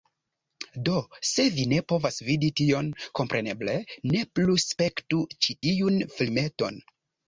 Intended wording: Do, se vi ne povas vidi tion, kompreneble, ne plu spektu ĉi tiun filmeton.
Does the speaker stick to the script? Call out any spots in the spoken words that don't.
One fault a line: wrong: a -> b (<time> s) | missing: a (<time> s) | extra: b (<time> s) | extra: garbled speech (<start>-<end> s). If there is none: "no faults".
no faults